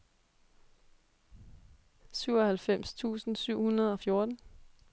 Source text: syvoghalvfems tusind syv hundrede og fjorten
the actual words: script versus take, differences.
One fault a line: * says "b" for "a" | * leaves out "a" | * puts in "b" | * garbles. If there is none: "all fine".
all fine